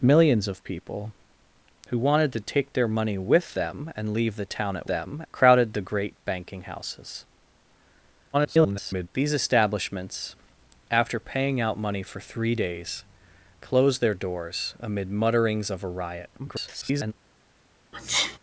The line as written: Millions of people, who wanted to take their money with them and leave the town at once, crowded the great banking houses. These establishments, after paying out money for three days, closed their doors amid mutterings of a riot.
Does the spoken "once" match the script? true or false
false